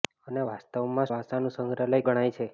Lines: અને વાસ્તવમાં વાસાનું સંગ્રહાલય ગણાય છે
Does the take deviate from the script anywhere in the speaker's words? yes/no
no